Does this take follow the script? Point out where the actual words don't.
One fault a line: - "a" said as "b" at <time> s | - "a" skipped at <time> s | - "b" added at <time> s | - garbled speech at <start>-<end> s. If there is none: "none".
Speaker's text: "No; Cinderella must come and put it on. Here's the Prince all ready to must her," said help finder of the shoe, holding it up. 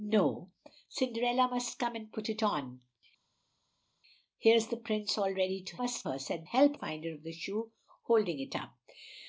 none